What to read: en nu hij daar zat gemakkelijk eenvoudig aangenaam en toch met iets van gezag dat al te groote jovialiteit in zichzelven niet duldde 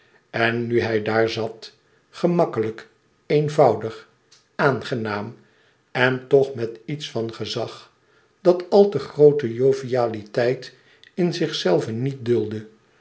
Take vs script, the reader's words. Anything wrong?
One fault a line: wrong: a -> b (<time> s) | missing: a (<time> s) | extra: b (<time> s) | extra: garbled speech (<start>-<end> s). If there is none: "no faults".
no faults